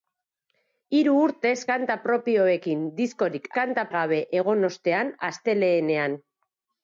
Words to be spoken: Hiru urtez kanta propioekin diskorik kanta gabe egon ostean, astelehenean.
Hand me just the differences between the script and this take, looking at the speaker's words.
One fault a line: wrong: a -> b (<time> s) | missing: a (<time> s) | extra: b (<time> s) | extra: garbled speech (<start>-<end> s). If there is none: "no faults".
no faults